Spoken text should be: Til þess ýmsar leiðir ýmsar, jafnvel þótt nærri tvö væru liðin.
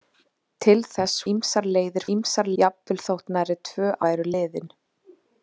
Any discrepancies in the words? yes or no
no